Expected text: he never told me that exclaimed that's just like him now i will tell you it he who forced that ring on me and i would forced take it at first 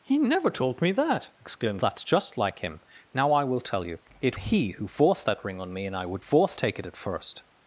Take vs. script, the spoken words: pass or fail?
pass